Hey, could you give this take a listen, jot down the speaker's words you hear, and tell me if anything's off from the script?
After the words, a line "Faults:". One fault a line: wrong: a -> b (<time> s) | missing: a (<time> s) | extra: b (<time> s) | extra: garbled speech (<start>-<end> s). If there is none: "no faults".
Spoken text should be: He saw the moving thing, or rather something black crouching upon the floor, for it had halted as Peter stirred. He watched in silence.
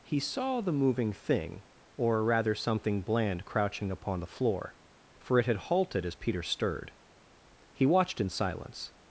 He saw the moving thing, or rather something bland crouching upon the floor, for it had halted as Peter stirred. He watched in silence.
Faults:
wrong: black -> bland (3.0 s)